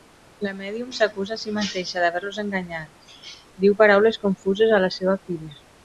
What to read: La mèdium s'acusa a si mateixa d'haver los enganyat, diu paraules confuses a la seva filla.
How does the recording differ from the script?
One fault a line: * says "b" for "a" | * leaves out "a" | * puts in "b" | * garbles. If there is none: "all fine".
all fine